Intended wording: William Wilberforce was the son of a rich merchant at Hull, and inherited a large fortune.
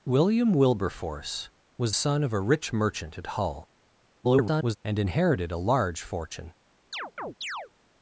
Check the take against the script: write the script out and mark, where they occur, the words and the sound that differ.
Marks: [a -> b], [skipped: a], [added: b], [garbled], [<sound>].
William Wilberforce was [skipped: the] son of a rich merchant at Hull, [garbled] and inherited a large fortune. [chirp]